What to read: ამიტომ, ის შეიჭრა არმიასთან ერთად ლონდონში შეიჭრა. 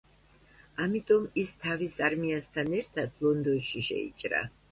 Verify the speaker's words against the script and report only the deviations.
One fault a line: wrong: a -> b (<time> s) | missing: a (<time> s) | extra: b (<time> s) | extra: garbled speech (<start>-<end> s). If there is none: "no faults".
wrong: შეიჭრა -> თავის (1.6 s)